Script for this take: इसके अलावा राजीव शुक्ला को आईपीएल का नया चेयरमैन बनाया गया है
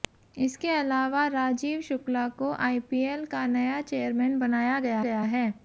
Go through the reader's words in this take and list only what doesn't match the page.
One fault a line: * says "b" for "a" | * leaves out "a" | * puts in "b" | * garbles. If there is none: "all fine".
* puts in "गया"